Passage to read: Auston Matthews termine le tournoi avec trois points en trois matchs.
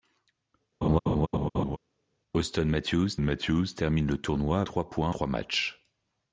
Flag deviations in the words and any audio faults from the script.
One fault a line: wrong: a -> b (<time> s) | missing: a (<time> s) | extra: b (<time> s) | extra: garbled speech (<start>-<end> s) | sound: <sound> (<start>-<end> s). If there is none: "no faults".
sound: laugh (0.8-1.8 s)
extra: Matthews (3.2 s)
missing: avec (4.6 s)
missing: en (5.1 s)